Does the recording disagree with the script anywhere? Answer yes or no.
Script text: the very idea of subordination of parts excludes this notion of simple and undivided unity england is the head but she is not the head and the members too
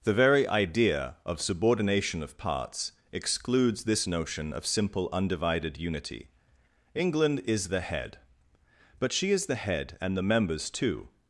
yes